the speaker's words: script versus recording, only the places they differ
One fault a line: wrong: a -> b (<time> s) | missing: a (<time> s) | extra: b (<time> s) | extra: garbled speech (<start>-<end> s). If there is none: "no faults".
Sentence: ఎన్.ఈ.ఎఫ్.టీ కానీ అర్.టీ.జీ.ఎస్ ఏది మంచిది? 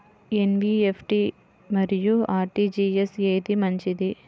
wrong: కానీ -> మరియు (1.7 s)